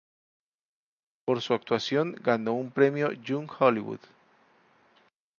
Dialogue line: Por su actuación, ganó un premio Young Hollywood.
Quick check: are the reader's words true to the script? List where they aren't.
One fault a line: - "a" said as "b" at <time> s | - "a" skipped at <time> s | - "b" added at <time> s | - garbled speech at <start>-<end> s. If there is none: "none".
none